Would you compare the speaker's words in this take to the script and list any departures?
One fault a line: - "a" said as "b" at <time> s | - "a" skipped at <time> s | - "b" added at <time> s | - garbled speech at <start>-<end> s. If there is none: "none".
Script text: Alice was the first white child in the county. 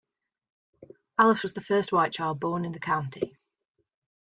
- "born" added at 2.4 s